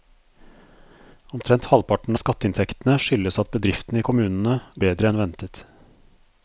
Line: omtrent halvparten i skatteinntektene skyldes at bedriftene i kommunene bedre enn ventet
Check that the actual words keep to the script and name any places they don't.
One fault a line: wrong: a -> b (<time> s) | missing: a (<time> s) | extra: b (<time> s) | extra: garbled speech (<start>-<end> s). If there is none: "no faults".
no faults